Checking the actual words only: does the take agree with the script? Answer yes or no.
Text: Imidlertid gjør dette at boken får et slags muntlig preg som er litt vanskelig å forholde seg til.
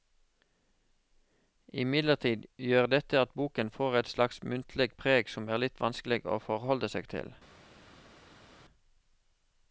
yes